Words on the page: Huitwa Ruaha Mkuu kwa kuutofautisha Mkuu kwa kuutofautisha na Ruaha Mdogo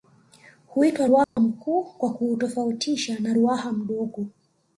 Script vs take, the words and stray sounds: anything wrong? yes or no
yes